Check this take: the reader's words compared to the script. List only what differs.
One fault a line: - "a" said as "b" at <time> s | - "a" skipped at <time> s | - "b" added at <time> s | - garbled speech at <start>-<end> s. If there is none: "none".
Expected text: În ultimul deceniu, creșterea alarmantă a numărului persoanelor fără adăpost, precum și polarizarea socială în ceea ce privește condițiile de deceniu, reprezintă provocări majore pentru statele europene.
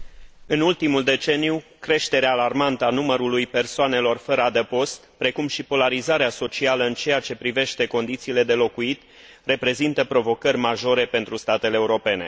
- "deceniu" said as "locuit" at 8.5 s